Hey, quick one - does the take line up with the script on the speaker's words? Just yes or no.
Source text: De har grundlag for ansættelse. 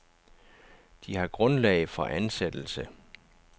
yes